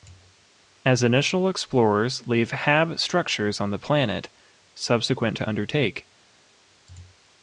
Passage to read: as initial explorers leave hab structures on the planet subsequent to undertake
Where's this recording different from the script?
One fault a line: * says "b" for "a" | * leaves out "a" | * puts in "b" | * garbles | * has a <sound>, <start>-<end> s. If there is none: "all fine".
all fine